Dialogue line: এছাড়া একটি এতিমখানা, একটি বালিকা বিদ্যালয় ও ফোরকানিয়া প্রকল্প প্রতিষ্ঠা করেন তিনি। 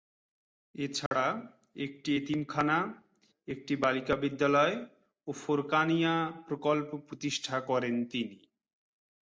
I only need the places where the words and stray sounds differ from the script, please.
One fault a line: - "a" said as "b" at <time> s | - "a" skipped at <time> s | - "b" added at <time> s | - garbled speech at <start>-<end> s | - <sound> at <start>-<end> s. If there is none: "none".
- dropout at 1.1-1.1 s